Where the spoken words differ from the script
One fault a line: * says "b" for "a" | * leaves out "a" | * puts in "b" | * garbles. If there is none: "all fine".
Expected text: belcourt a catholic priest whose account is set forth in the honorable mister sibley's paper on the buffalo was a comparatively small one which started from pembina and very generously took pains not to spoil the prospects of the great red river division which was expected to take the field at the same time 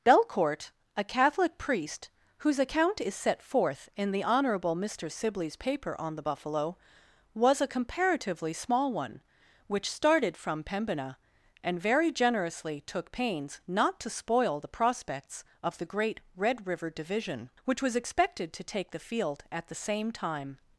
all fine